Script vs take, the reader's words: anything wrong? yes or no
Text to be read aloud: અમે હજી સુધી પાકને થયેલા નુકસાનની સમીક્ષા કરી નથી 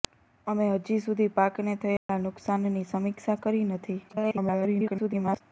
yes